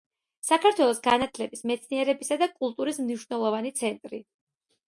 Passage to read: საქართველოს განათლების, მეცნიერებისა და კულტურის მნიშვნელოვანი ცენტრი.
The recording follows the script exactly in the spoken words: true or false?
true